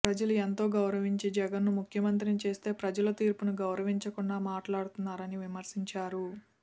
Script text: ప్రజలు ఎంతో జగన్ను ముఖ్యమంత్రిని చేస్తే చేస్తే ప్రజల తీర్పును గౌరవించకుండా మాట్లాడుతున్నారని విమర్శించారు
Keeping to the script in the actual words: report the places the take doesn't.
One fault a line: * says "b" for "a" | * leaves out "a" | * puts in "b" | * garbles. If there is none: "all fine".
* puts in "గౌరవించి"
* leaves out "చేస్తే"